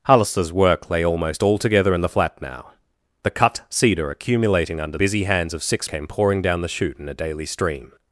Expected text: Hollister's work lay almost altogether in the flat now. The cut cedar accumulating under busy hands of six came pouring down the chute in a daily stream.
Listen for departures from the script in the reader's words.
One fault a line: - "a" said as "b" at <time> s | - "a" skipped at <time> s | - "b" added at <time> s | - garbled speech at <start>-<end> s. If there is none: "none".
none